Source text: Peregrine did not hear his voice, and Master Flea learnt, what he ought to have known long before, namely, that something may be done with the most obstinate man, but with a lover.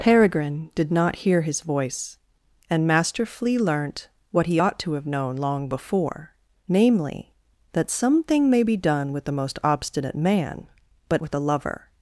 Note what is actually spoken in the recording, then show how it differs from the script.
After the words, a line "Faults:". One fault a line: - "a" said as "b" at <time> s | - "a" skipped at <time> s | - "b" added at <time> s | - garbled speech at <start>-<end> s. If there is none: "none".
Peregrine did not hear his voice, and Master Flea learnt, what he ought to have known long before, namely, that something may be done with the most obstinate man, but with a lover.
Faults:
none